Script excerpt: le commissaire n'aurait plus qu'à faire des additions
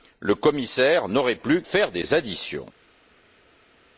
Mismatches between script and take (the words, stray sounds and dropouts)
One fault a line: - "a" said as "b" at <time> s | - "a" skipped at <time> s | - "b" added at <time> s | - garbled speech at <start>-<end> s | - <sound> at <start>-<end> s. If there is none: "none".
- "qu'à" skipped at 1.6 s